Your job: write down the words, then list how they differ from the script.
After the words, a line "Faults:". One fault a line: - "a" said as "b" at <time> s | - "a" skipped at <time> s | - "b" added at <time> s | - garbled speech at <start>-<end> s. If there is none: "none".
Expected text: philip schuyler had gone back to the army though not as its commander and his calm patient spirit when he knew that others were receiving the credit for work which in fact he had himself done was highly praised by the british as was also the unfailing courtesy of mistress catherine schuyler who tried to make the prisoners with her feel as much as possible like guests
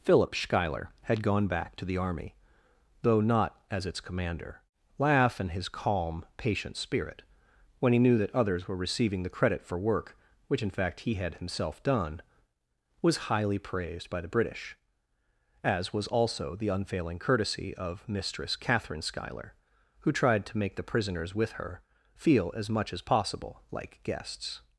philip schuyler had gone back to the army though not as its commander laugh and his calm patient spirit when he knew that others were receiving the credit for work which in fact he had himself done was highly praised by the british as was also the unfailing courtesy of mistress catherine schuyler who tried to make the prisoners with her feel as much as possible like guests
Faults:
- "laugh" added at 5.0 s